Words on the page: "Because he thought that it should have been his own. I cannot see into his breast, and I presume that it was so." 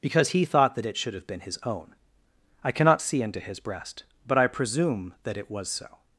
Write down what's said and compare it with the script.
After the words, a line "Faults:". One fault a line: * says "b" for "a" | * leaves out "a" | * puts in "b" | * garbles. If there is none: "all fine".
"Because he thought that it should have been his own. I cannot see into his breast, but I presume that it was so."
Faults:
* says "but" for "and"